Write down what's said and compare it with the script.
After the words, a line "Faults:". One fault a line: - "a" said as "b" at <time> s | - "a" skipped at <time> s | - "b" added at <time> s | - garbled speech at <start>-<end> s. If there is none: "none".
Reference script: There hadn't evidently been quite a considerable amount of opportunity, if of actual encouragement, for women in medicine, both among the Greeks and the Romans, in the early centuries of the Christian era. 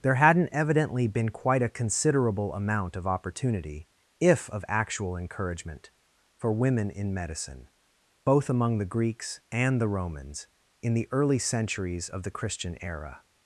There hadn't evidently been quite a considerable amount of opportunity, if of actual encouragement, for women in medicine, both among the Greeks and the Romans, in the early centuries of the Christian era.
Faults:
none